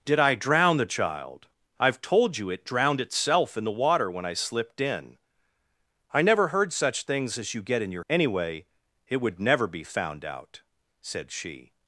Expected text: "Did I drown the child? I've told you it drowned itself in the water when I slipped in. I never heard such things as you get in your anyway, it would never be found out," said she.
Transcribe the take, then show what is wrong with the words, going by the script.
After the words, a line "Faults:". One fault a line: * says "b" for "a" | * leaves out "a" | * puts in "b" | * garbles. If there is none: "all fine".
"Did I drown the child? I've told you it drowned itself in the water when I slipped in. I never heard such things as you get in your anyway, it would never be found out," said she.
Faults:
all fine